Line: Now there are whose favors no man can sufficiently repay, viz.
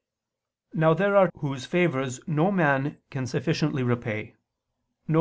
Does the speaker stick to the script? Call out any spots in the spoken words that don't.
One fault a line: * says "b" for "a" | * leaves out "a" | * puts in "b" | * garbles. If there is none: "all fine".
all fine